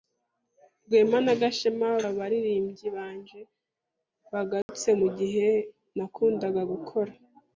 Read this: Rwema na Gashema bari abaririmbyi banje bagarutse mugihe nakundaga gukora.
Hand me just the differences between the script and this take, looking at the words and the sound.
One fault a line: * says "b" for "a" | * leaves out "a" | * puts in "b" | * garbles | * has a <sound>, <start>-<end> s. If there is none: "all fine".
* leaves out "bari"
* has a dropout, 4.6-4.7 s